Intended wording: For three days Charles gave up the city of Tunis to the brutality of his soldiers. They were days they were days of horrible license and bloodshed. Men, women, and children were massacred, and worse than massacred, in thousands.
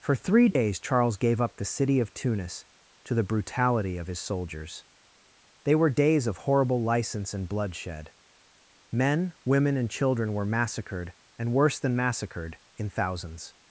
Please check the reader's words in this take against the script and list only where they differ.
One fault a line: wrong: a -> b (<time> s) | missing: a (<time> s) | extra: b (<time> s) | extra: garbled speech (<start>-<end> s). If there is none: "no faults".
missing: they were days (6.2 s)